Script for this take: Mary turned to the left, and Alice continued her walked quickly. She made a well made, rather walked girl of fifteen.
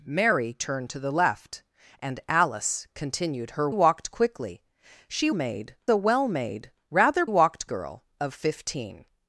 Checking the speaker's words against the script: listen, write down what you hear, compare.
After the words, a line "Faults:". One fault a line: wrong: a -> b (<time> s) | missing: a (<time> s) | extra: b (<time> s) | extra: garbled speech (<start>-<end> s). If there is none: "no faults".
Mary turned to the left, and Alice continued her walked quickly. She made a well made, rather walked girl of fifteen.
Faults:
no faults